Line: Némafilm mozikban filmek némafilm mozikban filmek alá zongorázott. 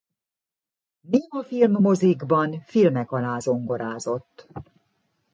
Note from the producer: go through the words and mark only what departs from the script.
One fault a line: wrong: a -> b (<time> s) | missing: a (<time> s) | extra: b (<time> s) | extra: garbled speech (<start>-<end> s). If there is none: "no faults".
missing: némafilm mozikban filmek (3.1 s)